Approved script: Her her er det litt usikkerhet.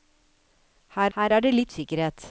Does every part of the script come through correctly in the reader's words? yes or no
yes